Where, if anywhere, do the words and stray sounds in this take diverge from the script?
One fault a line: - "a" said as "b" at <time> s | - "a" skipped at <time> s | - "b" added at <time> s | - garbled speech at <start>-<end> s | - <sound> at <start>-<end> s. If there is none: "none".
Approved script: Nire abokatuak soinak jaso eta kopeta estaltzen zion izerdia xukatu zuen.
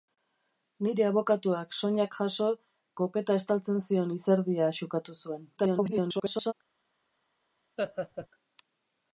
- "eta" skipped at 2.5 s
- garbled speech at 5.6-6.5 s
- laugh at 7.8-8.3 s